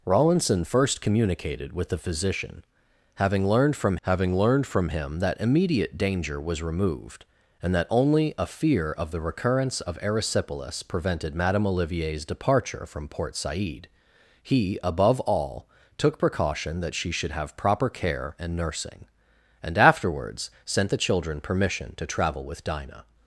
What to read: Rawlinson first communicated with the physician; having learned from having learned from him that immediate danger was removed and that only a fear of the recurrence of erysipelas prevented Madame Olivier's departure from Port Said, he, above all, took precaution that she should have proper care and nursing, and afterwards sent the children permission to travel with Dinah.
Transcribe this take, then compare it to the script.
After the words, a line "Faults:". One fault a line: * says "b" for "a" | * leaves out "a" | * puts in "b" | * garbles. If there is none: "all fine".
Rawlinson first communicated with the physician; having learned from having learned from him that immediate danger was removed and that only a fear of the recurrence of erysipelas prevented Madame Olivier's departure from Port Said, he, above all, took precaution that she should have proper care and nursing, and afterwards sent the children permission to travel with Dinah.
Faults:
all fine